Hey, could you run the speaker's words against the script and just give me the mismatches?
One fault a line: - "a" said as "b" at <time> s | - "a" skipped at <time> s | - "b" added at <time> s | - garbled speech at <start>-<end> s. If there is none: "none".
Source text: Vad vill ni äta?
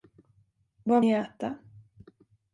- "vill" skipped at 1.0 s